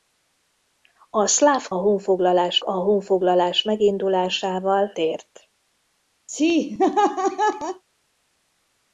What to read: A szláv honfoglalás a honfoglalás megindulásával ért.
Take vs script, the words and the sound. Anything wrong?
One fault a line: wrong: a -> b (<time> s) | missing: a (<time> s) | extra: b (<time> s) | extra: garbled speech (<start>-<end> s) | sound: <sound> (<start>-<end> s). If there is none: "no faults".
sound: laugh (6.3-7.8 s)